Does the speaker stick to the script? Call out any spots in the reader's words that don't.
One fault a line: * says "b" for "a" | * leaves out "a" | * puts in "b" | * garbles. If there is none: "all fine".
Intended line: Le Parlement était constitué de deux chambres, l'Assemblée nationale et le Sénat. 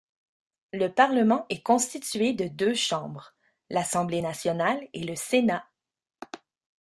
* says "est" for "était"